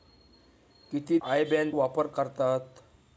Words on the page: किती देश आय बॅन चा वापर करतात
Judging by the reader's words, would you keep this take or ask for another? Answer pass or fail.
fail